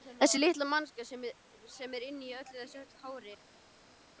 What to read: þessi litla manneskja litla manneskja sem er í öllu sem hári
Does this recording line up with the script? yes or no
no